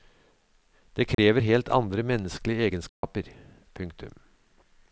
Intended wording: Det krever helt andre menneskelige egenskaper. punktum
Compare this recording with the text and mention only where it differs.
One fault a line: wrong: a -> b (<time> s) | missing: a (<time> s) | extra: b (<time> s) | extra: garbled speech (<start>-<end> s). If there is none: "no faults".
no faults